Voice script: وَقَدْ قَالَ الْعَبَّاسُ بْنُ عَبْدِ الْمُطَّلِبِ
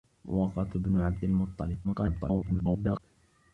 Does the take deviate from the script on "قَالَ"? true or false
true